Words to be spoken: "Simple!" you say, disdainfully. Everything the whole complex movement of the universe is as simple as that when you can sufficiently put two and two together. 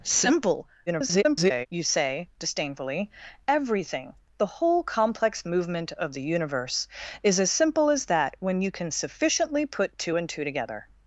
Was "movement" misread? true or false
false